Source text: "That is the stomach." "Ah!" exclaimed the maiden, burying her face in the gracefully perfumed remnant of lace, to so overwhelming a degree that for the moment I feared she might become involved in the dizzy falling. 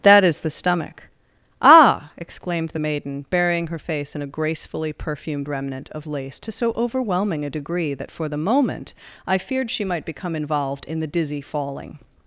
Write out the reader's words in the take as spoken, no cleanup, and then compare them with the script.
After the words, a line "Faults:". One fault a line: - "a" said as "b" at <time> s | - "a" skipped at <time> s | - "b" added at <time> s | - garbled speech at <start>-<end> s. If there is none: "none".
"That is the stomach." "Ah!" exclaimed the maiden, burying her face in a gracefully perfumed remnant of lace, to so overwhelming a degree that for the moment I feared she might become involved in the dizzy falling.
Faults:
- "the" said as "a" at 4.2 s